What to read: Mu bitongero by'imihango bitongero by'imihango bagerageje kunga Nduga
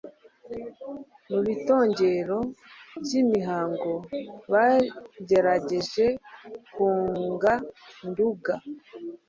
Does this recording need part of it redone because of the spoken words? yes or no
yes